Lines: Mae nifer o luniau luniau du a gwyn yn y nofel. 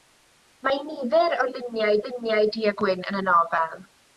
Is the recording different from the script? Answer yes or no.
no